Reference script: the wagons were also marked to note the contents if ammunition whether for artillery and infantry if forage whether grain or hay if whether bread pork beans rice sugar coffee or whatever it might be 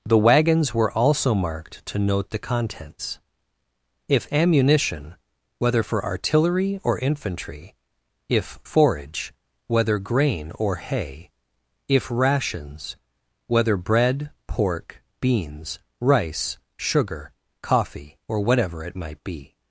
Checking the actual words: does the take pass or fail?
fail